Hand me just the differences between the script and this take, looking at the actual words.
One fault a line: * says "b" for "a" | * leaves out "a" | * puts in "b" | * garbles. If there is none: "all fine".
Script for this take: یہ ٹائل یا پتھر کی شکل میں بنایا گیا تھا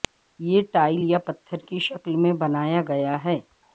* says "ہے" for "تھا"